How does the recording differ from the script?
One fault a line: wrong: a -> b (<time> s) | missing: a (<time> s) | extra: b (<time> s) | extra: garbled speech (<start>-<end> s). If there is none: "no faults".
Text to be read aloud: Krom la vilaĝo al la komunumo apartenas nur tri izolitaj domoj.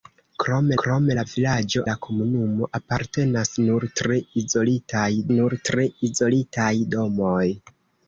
extra: krom (0.8 s)
missing: al (1.8 s)
extra: nur tri izolitaj (5.4 s)